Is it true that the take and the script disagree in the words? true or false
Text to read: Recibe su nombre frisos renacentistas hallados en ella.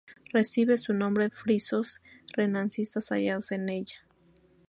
false